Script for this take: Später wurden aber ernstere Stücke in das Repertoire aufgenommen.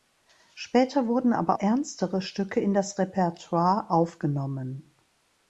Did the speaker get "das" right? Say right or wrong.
right